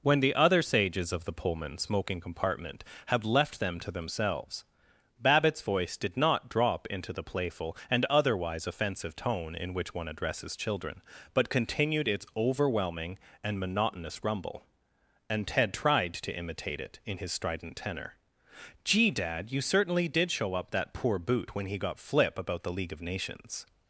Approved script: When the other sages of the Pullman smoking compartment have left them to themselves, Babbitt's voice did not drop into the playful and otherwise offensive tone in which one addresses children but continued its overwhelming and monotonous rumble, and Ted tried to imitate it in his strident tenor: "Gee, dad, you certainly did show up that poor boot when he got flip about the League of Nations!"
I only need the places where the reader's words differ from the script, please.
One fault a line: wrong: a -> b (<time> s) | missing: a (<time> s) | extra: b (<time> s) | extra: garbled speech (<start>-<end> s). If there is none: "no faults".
no faults